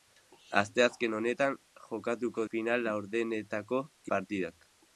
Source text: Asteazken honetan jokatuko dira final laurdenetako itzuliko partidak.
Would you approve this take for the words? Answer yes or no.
no